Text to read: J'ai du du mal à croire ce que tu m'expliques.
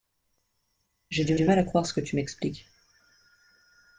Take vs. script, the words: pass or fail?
pass